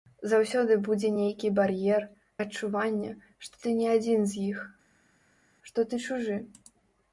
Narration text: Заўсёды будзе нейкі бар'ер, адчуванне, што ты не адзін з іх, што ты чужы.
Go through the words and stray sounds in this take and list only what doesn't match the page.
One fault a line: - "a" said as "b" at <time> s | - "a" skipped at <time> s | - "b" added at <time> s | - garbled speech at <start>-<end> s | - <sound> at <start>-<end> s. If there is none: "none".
none